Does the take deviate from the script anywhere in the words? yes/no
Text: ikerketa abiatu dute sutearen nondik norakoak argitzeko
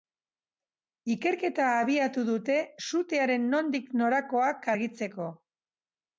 no